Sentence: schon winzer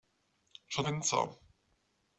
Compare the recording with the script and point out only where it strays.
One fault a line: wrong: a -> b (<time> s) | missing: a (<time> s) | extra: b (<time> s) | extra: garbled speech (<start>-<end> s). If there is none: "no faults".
no faults